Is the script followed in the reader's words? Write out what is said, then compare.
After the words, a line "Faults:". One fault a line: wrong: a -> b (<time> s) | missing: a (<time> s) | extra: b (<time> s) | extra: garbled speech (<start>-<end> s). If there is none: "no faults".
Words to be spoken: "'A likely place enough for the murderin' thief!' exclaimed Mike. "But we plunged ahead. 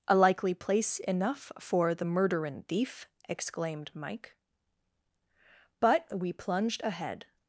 "'A likely place enough for the murderin' thief!' exclaimed Mike. "But we plunged ahead.
Faults:
no faults